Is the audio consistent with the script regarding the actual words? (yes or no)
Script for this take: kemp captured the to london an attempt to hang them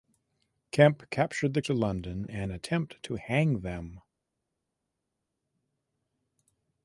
yes